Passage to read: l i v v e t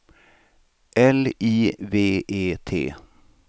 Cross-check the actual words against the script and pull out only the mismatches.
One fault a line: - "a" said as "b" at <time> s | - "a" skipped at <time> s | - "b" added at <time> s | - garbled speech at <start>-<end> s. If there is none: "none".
- "v" skipped at 2.2 s